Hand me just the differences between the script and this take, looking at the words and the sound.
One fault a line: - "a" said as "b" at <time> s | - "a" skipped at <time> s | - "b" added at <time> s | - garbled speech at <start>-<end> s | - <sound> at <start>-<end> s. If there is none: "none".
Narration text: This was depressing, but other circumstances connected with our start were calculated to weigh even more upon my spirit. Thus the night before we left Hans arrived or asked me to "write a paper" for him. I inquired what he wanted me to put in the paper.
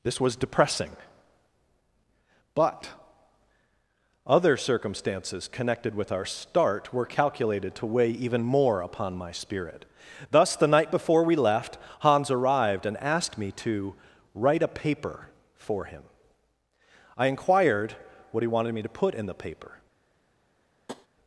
- "or" said as "and" at 12.9 s
- tap at 20.9-21.1 s